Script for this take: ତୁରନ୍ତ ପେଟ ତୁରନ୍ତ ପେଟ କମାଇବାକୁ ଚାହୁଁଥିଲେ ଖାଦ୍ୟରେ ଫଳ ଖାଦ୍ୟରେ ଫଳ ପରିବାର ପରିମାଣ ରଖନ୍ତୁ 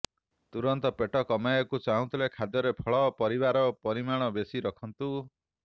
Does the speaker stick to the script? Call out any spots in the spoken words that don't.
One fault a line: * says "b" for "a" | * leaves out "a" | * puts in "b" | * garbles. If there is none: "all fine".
* leaves out "ତୁରନ୍ତ ପେଟ"
* leaves out "ଖାଦ୍ୟରେ ଫଳ"
* puts in "ବେଶି"